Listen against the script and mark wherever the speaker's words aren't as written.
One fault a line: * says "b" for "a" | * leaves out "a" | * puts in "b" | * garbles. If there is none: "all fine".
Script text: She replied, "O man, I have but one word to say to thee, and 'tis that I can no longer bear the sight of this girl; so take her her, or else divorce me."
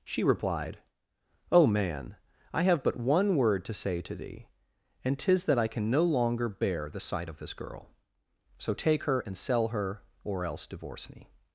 * puts in "and sell"